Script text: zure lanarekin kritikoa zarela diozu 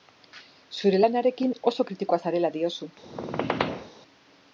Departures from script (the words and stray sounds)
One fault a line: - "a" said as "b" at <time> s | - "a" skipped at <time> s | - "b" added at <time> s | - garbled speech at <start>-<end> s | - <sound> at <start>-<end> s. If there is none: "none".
- "oso" added at 1.7 s
- squeak at 3.0-3.9 s